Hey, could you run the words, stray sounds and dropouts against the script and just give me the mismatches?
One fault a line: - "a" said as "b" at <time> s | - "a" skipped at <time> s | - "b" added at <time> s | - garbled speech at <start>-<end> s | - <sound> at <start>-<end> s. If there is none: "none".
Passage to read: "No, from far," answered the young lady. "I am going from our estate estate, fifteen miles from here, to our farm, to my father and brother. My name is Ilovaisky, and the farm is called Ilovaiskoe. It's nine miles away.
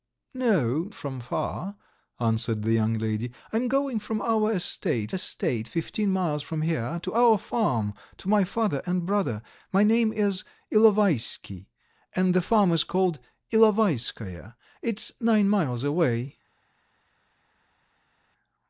none